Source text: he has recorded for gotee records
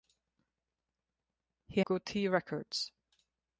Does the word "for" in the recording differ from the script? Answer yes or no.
yes